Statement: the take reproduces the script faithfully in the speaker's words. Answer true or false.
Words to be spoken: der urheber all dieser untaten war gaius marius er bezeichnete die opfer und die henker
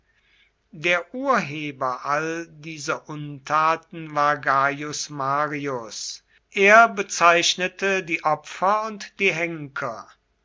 true